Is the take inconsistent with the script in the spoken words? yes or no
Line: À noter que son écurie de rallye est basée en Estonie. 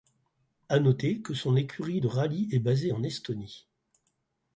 no